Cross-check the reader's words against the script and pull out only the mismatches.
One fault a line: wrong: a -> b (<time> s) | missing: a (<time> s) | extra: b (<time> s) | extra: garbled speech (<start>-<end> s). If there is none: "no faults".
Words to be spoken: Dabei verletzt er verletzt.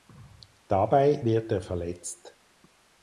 wrong: verletzt -> wird (1.3 s)